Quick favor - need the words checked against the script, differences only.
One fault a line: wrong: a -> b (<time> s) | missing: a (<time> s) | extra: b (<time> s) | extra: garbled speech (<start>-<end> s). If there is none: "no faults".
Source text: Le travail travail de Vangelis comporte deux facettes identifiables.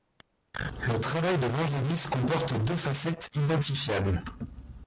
missing: travail (1.4 s)